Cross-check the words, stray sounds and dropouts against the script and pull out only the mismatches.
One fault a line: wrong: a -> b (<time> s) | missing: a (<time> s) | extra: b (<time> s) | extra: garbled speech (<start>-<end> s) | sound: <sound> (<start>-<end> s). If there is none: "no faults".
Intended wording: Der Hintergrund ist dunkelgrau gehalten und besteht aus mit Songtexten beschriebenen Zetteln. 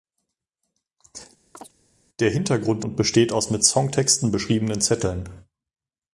sound: chirp (1.5-1.7 s)
missing: ist dunkelgrau gehalten (2.8 s)